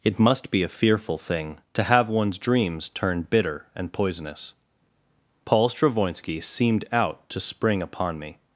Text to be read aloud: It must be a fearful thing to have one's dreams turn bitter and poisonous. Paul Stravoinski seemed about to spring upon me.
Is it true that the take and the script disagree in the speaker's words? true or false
true